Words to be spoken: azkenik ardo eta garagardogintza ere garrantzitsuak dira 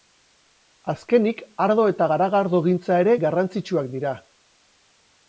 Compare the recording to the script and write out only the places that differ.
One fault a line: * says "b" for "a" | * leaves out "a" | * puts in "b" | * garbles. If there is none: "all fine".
all fine